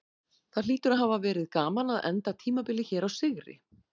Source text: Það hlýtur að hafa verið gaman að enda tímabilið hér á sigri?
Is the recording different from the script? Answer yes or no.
no